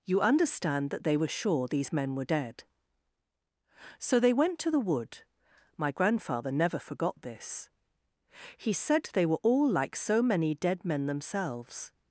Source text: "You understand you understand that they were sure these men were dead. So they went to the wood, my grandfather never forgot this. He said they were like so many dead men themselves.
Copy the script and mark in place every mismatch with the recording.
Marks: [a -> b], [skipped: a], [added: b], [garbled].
"You understand [skipped: you understand] that they were sure these men were dead. So they went to the wood, my grandfather never forgot this. He said they were [added: all] like so many dead men themselves.